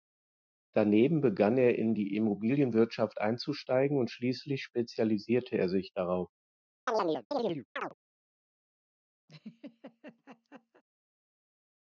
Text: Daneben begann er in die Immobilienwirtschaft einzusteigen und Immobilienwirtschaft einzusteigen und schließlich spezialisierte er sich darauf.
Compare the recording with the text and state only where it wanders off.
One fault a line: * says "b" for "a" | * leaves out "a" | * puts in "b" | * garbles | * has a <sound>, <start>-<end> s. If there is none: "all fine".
* leaves out "Immobilienwirtschaft einzusteigen und"
* has a chirp, 6.9-7.9 s
* has a laugh, 9.3-10.8 s